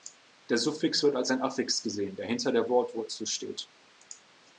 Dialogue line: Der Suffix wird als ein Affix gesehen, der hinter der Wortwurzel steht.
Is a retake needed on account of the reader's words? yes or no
no